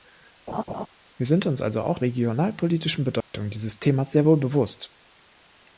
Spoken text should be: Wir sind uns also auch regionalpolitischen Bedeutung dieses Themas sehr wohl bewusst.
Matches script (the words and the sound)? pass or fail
fail